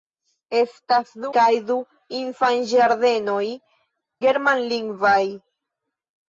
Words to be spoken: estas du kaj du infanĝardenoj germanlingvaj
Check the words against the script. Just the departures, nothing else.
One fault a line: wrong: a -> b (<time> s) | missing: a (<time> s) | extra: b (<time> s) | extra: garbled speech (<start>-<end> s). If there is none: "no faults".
no faults